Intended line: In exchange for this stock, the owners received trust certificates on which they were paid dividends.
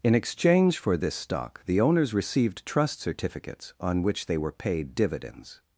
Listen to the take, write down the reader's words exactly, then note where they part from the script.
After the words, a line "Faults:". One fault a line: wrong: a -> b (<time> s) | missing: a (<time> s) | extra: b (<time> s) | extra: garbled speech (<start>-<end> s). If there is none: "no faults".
In exchange for this stock, the owners received trust certificates on which they were paid dividends.
Faults:
no faults